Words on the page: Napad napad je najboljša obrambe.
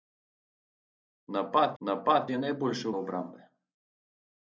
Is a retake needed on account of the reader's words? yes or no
no